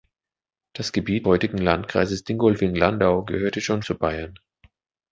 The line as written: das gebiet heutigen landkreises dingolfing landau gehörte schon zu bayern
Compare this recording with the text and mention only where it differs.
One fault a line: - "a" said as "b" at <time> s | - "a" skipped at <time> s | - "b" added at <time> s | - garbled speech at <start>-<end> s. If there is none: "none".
none